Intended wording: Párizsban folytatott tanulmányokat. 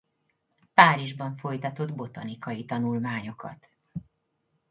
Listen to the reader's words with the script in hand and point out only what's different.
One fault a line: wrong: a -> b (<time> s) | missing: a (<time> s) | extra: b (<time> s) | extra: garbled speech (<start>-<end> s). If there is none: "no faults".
extra: botanikai (1.9 s)